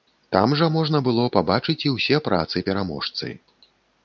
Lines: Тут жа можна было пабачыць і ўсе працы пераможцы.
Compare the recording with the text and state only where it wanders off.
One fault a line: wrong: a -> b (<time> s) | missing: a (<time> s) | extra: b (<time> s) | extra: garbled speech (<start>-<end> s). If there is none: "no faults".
wrong: Тут -> Там (0.3 s)